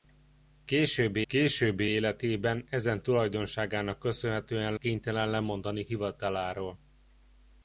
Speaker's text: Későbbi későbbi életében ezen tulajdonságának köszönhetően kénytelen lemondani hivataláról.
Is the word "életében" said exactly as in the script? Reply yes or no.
yes